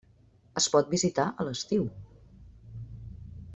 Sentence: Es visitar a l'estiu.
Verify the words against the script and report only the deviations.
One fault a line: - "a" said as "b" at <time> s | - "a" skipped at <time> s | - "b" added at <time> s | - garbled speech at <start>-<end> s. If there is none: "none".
- "pot" added at 0.7 s